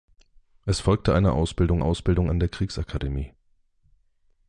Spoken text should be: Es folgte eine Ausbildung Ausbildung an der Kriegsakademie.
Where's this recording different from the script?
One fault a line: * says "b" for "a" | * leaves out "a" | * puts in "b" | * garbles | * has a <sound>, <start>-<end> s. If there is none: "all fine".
all fine